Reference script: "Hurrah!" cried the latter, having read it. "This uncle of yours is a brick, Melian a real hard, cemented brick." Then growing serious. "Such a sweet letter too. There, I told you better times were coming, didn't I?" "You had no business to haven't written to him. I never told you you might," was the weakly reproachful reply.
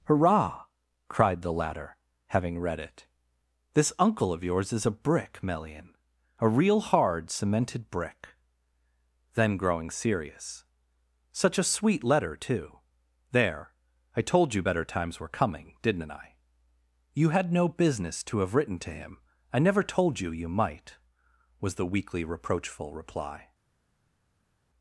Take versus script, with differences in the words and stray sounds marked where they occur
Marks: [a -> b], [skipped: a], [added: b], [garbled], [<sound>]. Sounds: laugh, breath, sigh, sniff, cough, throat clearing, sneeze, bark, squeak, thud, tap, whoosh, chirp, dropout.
"Hurrah!" cried the latter, having read it. "This uncle of yours is a brick, Melian a real hard, cemented brick." Then growing serious. "Such a sweet letter too. There, I told you better times were coming, didn't I?" "You had no business to [haven't -> have] written to him. I never told you you might," was the weakly reproachful reply.